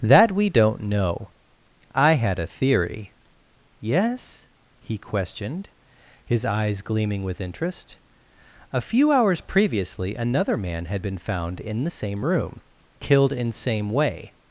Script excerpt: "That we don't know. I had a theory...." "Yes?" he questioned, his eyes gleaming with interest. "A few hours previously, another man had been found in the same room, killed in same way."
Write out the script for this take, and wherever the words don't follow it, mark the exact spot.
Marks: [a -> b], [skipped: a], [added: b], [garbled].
"That we don't know. I had a theory...." "Yes?" he questioned, his eyes gleaming with interest. "A few hours previously, another man had been found in the same room, killed in same way."